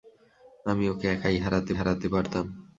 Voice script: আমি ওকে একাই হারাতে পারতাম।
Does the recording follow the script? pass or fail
fail